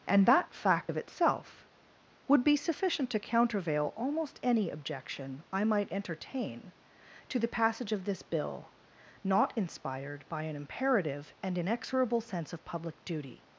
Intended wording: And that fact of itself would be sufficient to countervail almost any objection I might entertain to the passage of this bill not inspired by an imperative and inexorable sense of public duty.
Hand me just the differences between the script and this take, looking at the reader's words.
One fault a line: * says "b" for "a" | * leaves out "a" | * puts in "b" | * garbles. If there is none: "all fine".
all fine